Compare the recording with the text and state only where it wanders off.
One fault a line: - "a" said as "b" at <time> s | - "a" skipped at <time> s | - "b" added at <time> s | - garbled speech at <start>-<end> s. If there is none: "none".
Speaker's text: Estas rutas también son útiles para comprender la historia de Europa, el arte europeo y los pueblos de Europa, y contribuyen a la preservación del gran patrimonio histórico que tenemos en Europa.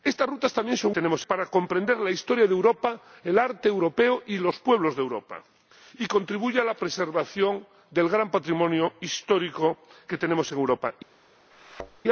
- "útiles" said as "tenemos" at 0.9 s